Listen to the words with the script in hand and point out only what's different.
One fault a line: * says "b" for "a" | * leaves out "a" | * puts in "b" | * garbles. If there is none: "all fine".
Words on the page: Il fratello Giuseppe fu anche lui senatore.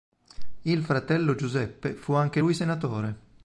all fine